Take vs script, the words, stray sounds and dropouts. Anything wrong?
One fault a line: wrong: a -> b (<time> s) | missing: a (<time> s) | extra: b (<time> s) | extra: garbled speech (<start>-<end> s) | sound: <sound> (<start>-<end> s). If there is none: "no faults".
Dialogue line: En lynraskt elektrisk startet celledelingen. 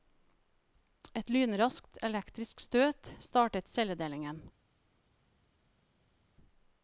wrong: En -> Et (1.1 s)
extra: støt (2.6 s)